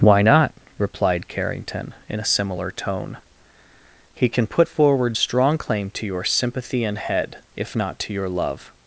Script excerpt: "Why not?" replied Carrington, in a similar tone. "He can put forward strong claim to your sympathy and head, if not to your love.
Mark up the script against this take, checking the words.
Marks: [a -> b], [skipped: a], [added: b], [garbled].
"Why not?" replied Carrington, in a similar tone. "He can put forward strong claim to your sympathy and head, if not to your love.